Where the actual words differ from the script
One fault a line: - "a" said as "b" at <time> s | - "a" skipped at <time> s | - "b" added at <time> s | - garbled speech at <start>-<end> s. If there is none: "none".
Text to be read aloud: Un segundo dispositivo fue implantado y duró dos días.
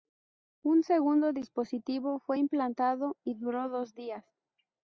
none